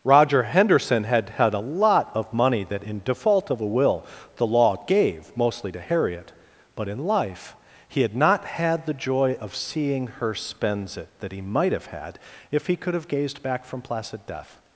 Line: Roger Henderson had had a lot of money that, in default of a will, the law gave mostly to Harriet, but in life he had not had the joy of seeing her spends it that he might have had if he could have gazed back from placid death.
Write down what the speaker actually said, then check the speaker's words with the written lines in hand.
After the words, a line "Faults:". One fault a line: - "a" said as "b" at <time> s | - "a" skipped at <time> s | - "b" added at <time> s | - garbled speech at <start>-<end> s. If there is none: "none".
Roger Henderson had had a lot of money that, in default of a will, the law gave mostly to Harriet, but in life he had not had the joy of seeing her spends it that he might have had if he could have gazed back from placid death.
Faults:
none